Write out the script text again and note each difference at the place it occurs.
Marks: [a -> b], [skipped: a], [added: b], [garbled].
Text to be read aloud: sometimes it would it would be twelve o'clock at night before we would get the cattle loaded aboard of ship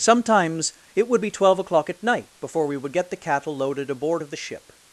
sometimes it would [skipped: it would] be twelve o'clock at night before we would get the cattle loaded aboard of [added: the] ship